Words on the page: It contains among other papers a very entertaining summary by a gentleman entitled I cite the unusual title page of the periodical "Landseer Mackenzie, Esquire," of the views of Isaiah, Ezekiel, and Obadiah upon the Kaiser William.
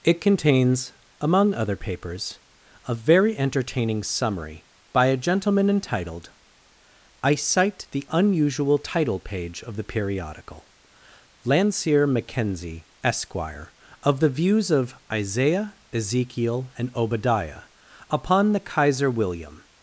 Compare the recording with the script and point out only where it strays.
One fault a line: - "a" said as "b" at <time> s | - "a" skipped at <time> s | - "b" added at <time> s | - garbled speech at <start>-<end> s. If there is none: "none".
none